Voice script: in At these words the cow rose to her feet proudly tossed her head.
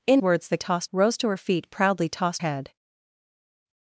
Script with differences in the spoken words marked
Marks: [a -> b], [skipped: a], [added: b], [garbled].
in [skipped: At these] words the [cow -> tossed] rose to her feet proudly tossed [skipped: her] head.